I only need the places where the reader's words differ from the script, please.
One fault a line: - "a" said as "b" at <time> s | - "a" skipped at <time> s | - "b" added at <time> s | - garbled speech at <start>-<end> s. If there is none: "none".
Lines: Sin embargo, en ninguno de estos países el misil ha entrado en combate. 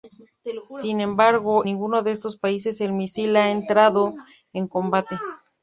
- "en" skipped at 1.6 s